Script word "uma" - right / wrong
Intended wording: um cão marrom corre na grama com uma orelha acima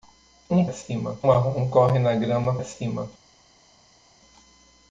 wrong